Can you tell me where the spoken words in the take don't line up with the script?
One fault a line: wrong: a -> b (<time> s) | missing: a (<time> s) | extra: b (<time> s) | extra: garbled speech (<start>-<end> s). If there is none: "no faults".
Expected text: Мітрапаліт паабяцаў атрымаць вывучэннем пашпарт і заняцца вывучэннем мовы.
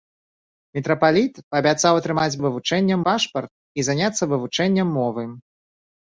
no faults